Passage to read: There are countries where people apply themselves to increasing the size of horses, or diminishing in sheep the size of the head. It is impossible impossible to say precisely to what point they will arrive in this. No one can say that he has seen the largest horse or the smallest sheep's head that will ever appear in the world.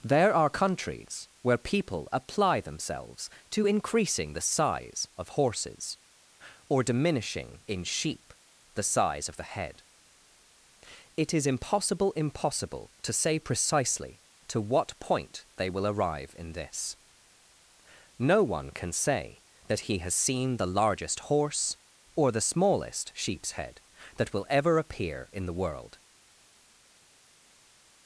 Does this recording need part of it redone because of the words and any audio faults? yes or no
no